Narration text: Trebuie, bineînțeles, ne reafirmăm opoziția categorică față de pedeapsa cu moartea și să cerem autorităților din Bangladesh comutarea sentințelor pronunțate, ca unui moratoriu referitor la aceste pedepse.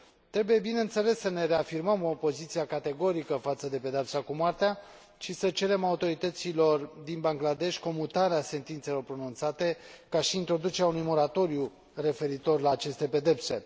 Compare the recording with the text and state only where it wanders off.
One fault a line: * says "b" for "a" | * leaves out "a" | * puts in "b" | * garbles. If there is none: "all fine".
* puts in "să"
* puts in "și introducerea"